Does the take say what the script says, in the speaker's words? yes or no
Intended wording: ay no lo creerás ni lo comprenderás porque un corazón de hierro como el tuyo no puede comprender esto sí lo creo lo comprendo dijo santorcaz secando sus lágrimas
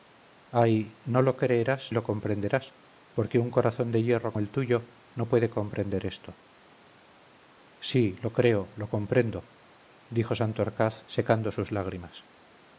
no